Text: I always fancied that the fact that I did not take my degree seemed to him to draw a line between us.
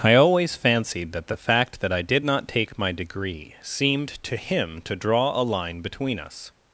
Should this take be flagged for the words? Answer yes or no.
no